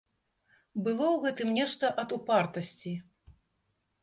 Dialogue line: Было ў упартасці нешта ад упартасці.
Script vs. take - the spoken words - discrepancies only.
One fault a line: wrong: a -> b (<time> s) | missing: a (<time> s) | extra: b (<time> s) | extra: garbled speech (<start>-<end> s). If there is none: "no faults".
wrong: упартасці -> гэтым (1.2 s)